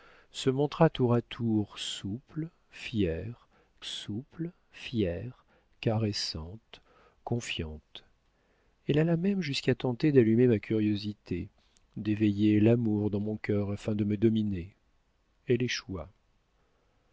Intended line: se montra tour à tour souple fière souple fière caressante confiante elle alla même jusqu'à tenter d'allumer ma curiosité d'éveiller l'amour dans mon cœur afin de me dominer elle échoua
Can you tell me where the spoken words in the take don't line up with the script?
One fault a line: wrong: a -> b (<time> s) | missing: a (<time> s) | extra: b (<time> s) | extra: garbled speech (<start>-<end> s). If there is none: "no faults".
no faults